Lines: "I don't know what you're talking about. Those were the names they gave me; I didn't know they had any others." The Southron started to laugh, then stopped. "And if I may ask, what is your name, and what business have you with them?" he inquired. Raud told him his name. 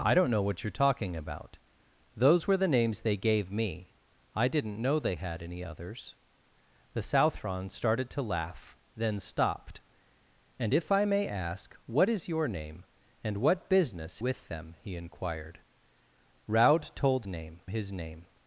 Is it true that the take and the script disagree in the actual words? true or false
true